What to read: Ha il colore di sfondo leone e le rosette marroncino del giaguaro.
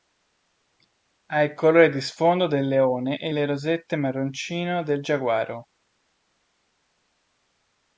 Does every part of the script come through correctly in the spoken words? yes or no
no